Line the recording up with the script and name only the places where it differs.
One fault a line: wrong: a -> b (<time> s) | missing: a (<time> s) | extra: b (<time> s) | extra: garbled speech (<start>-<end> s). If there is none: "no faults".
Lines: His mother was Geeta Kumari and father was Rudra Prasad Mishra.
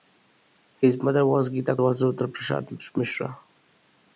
missing: Kumari and father (1.8 s)